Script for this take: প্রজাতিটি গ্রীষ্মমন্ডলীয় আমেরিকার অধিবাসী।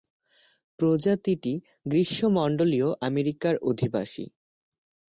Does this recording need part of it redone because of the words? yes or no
no